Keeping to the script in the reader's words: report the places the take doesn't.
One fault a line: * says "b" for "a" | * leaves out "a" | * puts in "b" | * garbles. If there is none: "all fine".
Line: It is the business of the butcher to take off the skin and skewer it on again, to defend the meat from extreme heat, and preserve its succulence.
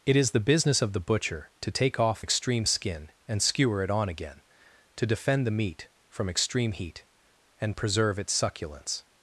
* says "extreme" for "the"